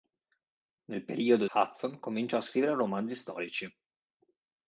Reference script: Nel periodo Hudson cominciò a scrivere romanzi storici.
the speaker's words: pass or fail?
pass